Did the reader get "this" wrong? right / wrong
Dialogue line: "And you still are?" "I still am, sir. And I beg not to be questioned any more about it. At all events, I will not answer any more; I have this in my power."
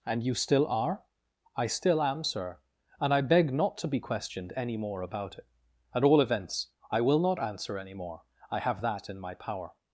wrong